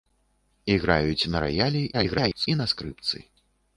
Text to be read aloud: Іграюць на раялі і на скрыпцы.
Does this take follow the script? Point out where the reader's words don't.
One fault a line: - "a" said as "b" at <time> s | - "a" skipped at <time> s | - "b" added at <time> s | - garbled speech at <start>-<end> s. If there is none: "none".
- garbled speech at 1.9-2.5 s